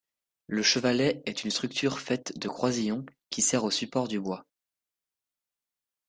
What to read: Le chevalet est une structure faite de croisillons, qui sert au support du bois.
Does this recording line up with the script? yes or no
yes